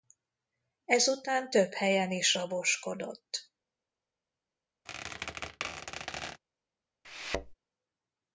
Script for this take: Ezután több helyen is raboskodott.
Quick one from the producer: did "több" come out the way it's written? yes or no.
yes